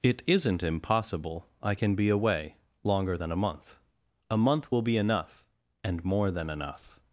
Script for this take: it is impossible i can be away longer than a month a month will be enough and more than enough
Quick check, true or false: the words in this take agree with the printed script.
false